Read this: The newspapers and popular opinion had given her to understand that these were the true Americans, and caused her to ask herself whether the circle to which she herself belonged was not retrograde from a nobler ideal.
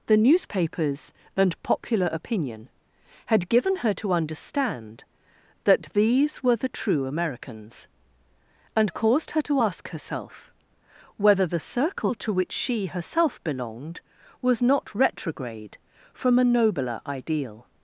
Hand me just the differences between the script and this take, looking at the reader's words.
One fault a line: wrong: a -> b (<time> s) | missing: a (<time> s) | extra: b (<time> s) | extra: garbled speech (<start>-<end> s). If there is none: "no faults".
no faults